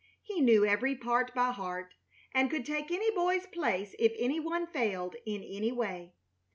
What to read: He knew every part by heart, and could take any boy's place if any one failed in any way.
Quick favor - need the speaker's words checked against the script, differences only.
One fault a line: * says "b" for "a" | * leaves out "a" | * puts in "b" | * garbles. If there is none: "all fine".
all fine